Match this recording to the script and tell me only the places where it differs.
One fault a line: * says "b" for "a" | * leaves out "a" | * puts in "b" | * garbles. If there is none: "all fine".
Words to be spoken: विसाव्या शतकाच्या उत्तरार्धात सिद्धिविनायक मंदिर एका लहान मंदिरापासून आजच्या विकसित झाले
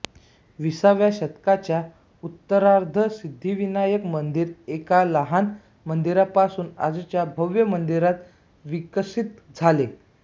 * puts in "भव्य मंदिरात"